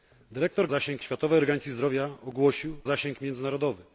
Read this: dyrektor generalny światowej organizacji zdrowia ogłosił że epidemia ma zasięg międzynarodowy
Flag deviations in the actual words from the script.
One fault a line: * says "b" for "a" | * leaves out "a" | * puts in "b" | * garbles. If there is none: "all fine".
* says "zasięg" for "generalny"
* leaves out "że epidemia ma"